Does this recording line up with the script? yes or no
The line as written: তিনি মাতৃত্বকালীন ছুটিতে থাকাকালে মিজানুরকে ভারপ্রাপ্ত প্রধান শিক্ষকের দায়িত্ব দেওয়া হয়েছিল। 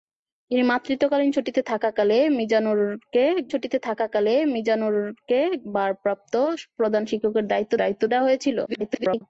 no